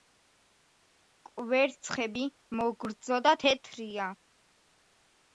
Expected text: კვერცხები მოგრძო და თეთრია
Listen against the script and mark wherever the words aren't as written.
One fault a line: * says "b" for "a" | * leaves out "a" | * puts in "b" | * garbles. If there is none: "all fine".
all fine